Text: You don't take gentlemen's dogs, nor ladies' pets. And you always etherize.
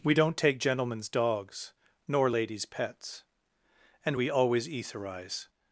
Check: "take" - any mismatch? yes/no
no